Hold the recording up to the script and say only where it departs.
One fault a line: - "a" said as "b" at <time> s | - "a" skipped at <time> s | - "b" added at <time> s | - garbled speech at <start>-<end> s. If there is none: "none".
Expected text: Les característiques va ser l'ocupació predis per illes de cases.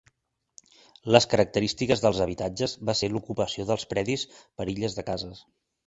- "dels habitatges" added at 2.0 s
- "dels" added at 3.7 s